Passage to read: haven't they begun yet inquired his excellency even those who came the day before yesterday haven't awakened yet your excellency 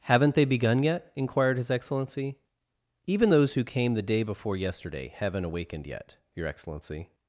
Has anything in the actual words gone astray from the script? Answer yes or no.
no